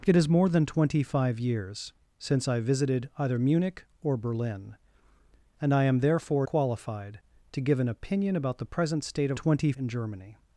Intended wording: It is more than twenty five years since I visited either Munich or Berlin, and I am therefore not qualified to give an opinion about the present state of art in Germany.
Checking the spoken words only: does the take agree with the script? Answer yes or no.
no